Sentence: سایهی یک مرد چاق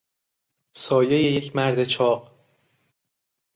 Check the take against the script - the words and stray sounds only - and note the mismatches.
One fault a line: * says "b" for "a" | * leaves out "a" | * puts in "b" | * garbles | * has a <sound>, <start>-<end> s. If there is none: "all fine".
all fine